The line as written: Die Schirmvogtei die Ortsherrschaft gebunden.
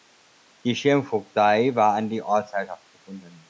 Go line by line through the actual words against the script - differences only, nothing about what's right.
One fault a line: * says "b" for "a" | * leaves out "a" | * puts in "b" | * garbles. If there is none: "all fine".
* puts in "war an"